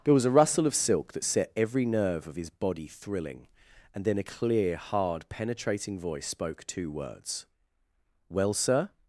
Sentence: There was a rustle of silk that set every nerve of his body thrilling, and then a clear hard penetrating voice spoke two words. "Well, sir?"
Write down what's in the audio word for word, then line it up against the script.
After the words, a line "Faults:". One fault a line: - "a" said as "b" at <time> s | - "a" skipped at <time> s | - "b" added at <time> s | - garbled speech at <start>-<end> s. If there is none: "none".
There was a rustle of silk that set every nerve of his body thrilling, and then a clear hard penetrating voice spoke two words. "Well, sir?"
Faults:
none